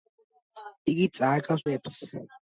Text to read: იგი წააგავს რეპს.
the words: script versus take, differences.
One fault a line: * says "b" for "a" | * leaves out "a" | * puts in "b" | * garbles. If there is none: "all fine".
all fine